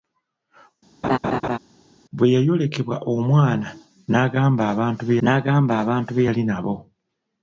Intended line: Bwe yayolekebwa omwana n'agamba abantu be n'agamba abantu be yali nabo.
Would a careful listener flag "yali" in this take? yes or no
no